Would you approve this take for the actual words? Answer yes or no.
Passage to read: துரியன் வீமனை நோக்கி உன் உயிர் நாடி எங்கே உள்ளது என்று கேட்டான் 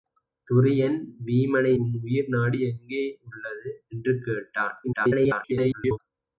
no